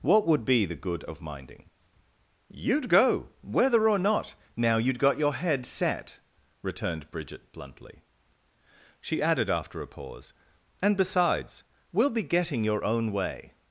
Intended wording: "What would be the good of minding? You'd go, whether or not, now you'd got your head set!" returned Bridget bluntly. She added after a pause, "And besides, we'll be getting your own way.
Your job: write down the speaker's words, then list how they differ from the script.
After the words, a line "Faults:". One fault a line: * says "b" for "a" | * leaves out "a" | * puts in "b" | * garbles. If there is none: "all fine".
"What would be the good of minding? You'd go, whether or not, now you'd got your head set!" returned Bridget bluntly. She added after a pause, "And besides, we'll be getting your own way.
Faults:
all fine